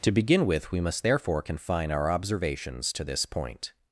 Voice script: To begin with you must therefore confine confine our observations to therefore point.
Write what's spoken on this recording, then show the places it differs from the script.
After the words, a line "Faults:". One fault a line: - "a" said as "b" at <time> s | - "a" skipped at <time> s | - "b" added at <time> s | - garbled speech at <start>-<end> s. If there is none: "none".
To begin with we must therefore confine our observations to this point.
Faults:
- "you" said as "we" at 0.7 s
- "confine" skipped at 1.9 s
- "therefore" said as "this" at 3.0 s